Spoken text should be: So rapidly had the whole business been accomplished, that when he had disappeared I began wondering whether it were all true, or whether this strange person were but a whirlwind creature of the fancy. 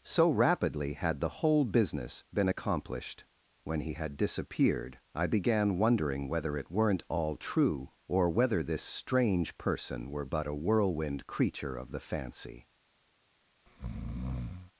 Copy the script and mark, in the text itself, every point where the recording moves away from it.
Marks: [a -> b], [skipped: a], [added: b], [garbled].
So rapidly had the whole business been accomplished, [skipped: that] when he had disappeared I began wondering whether it [were -> weren't] all true, or whether this strange person were but a whirlwind creature of the fancy.